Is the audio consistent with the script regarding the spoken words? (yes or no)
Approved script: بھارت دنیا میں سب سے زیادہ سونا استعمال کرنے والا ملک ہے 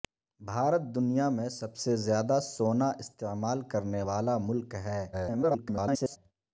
no